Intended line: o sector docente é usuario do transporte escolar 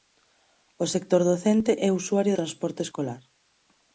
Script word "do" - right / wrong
wrong